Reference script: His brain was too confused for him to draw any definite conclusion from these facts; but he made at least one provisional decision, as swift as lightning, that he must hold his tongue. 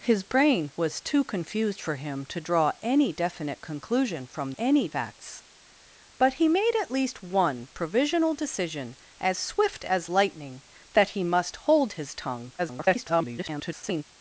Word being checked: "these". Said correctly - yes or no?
no